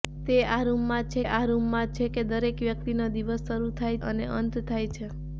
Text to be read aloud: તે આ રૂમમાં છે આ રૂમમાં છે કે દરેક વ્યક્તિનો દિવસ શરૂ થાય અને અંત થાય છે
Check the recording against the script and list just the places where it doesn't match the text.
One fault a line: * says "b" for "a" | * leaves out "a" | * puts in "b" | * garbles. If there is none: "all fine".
all fine